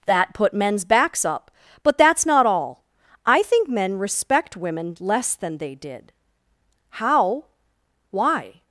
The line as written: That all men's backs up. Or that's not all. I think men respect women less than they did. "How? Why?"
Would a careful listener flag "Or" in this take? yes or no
yes